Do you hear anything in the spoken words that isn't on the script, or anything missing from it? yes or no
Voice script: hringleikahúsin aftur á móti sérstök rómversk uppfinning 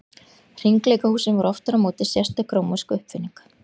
yes